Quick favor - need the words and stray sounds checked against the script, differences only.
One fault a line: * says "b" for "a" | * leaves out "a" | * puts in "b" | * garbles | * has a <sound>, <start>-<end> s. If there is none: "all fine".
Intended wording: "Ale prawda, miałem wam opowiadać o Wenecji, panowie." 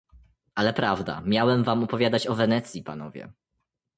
all fine